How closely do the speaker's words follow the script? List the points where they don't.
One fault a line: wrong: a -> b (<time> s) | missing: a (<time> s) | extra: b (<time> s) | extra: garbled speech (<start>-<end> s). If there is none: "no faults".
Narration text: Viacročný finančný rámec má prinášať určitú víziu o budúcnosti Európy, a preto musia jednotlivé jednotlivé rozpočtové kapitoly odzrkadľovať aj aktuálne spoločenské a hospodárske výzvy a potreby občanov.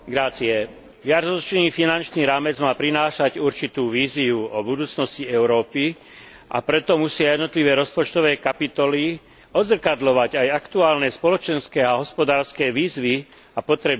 missing: jednotlivé (7.8 s)